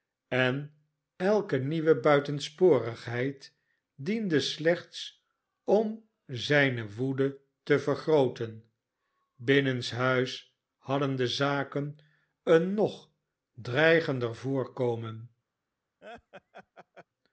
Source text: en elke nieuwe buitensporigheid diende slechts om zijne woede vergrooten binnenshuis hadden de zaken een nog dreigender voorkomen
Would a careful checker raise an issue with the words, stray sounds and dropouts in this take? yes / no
yes